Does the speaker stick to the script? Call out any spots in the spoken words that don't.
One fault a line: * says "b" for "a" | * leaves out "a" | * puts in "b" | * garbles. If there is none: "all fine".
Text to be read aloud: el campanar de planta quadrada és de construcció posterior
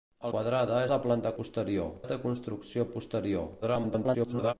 * says "quadrada" for "campanar"
* says "posterior" for "quadrada"
* garbles